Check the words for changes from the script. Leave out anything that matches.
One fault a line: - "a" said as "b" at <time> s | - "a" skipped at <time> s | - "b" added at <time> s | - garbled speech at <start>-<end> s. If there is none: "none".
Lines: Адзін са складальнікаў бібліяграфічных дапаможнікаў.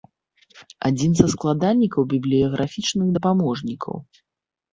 none